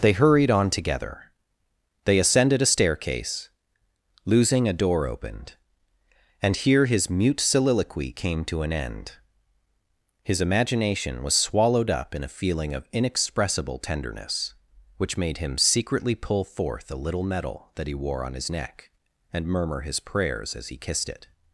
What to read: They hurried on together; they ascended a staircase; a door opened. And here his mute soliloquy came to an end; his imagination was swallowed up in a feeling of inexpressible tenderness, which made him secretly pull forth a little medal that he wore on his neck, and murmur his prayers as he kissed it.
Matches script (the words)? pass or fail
fail